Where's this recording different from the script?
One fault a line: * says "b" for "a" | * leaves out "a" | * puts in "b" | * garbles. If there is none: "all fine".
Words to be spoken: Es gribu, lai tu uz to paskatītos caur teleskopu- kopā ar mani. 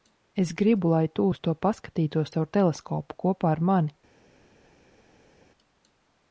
all fine